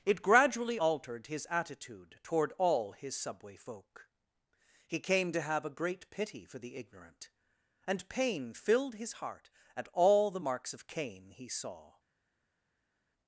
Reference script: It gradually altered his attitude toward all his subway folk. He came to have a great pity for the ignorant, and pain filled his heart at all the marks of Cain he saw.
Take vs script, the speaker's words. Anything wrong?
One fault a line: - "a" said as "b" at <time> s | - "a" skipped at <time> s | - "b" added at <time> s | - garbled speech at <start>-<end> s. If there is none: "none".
none